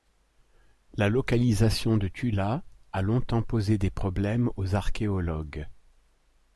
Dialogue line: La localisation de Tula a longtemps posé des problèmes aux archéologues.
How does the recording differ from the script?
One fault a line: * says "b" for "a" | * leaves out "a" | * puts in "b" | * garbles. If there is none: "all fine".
all fine